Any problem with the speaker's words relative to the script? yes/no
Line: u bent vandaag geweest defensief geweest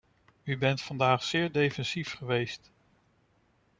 yes